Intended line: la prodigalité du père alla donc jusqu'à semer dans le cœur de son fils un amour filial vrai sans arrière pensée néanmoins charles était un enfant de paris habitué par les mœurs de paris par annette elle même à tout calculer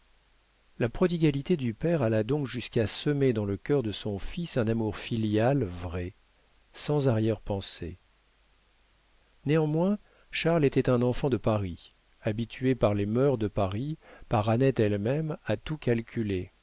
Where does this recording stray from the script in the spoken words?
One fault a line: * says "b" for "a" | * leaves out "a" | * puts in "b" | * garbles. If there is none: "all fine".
all fine